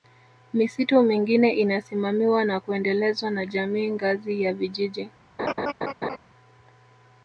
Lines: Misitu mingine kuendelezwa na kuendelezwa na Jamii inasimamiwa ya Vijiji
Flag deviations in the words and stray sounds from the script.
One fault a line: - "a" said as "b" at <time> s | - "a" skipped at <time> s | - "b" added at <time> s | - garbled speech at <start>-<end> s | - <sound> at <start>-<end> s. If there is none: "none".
- "kuendelezwa" said as "inasimamiwa" at 1.5 s
- "inasimamiwa" said as "ngazi" at 3.9 s
- laugh at 5.4-6.2 s